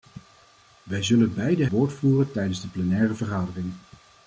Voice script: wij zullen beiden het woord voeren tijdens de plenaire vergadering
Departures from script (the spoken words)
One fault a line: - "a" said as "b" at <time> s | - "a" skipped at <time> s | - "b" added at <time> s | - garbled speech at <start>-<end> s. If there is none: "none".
- "het" skipped at 1.7 s